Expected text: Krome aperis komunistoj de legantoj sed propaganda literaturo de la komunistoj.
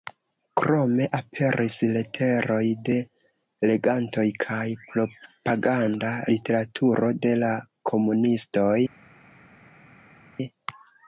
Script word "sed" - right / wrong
wrong